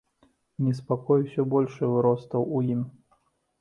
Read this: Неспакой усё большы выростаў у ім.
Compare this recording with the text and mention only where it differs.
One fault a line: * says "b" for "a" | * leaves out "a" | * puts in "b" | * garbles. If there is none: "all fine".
all fine